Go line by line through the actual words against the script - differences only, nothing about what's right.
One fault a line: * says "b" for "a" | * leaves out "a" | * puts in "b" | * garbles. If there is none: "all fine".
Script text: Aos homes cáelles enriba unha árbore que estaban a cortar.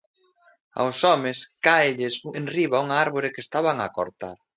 all fine